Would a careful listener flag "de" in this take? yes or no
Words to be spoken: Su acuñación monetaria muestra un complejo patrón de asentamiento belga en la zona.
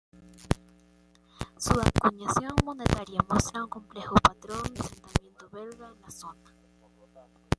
yes